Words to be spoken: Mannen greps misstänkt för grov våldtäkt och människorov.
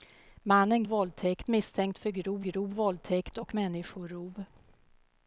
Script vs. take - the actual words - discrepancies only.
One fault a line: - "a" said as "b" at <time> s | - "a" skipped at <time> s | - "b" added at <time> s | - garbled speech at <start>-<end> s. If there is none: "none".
- "greps" said as "våldtäkt" at 0.8 s
- "grov" added at 2.4 s